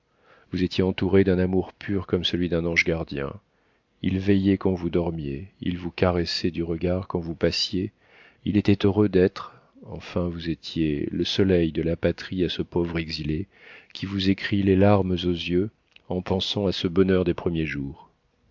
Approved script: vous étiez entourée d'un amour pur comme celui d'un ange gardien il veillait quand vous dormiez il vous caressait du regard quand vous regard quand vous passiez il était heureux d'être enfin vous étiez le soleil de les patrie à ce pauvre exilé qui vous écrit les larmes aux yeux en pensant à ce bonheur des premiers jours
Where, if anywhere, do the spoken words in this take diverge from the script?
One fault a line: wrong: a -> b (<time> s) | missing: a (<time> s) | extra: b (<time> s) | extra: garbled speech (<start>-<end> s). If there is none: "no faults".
missing: regard quand vous (7.3 s)
wrong: les -> la (11.8 s)